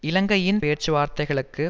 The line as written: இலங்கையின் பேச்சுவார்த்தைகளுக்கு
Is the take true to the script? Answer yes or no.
yes